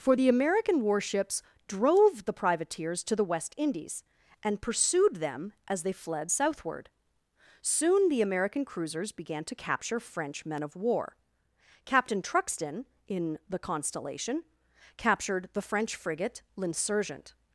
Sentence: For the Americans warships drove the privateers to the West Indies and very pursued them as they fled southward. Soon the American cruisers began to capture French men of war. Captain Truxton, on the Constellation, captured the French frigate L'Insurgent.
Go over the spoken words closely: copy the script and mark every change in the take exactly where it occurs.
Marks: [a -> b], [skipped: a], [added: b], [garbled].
For the [Americans -> American] warships drove the privateers to the West Indies and [skipped: very] pursued them as they fled southward. Soon the American cruisers began to capture French men of war. Captain Truxton, [on -> in] the Constellation, captured the French frigate L'Insurgent.